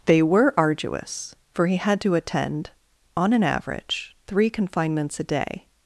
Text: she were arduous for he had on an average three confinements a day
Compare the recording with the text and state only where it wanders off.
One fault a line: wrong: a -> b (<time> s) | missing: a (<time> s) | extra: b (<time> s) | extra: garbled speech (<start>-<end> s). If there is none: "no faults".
wrong: she -> they (0.1 s)
extra: to attend (2.0 s)